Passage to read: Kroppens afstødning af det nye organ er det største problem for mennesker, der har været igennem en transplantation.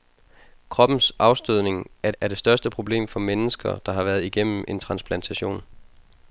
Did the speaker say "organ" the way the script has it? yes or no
no